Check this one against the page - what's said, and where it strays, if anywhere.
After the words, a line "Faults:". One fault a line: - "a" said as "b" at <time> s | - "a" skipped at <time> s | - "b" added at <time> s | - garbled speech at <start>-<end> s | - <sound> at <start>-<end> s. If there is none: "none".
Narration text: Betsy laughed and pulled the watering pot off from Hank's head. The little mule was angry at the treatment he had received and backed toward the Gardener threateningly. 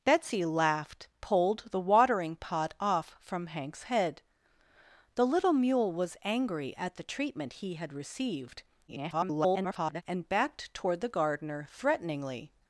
Betsy laughed pulled the watering pot off from Hank's head. The little mule was angry at the treatment he had received [garbled] and backed toward the Gardener threateningly.
Faults:
- "and" skipped at 1.1 s
- garbled speech at 8.9-10.0 s